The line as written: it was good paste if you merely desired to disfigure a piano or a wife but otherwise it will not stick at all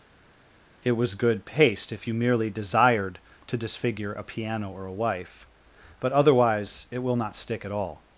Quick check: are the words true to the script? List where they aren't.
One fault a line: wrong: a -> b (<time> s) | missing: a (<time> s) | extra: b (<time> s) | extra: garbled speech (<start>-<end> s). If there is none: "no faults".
no faults